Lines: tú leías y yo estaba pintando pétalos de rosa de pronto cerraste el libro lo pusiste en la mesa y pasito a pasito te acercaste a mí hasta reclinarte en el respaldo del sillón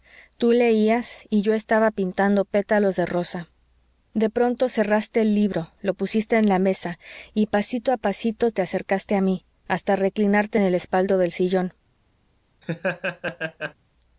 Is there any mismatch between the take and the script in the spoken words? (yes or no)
no